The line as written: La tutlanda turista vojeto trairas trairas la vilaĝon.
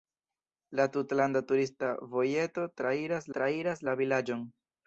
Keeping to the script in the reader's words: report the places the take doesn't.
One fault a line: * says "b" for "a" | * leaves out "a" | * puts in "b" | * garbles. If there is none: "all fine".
all fine